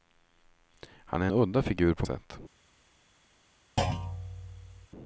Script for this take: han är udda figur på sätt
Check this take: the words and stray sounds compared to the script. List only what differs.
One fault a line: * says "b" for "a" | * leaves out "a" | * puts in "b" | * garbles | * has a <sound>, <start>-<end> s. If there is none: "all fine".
* has a thud, 3.8-4.9 s